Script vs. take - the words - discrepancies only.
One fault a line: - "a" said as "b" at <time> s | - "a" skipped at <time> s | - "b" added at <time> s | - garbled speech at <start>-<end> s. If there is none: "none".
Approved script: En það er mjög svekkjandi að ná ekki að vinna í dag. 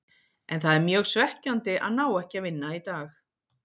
none